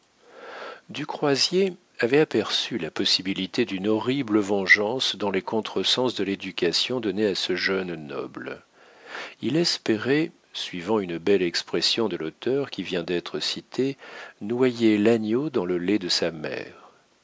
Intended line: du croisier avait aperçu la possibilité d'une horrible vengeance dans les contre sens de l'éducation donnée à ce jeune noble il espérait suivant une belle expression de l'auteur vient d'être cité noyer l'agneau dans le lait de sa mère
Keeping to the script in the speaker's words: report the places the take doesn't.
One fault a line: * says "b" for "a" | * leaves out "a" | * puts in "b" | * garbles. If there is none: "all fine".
* puts in "qui"